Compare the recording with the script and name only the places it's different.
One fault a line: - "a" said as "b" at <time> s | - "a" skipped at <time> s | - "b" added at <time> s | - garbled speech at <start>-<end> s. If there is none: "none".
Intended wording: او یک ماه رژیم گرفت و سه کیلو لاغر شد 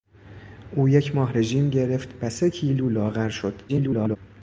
- garbled speech at 3.7-4.2 s